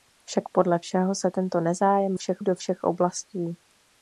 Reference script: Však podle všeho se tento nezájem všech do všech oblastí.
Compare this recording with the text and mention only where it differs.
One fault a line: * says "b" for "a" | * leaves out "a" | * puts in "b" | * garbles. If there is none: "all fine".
all fine